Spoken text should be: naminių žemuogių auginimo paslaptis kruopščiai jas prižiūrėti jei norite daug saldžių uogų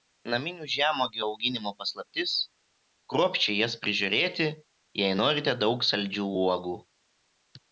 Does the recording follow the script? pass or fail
pass